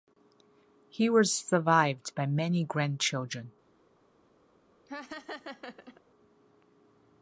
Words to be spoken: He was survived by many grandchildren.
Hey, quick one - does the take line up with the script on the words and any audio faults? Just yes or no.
no